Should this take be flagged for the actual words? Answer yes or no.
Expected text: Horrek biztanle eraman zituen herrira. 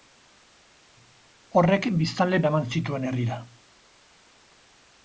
no